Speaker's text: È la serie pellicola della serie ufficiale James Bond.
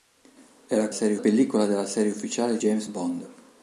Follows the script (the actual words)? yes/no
yes